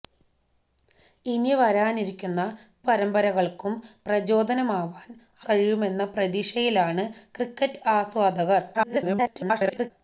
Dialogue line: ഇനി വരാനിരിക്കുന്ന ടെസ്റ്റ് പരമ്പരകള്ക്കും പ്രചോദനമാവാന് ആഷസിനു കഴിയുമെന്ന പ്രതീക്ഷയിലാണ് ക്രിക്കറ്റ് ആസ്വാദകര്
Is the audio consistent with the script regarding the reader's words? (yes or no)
no